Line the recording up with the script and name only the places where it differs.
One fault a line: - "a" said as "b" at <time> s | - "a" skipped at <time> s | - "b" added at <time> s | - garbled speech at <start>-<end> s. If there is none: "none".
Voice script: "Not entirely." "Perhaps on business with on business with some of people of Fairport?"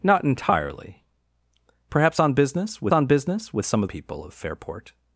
none